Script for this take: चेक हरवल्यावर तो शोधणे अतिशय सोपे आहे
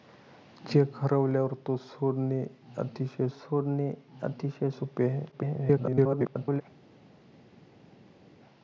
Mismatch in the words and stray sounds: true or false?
true